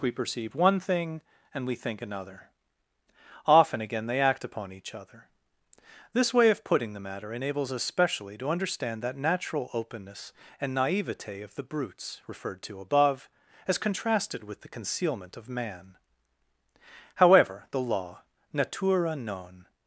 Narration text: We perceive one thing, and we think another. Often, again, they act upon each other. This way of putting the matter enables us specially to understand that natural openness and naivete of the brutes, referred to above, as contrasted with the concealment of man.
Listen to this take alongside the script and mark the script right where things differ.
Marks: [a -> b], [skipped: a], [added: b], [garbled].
We perceive one thing, and we think another. Often, again, they act upon each other. This way of putting the matter enables us specially to understand that natural openness and naivete of the brutes, referred to above, as contrasted with the concealment of man. [added: However the law natura non]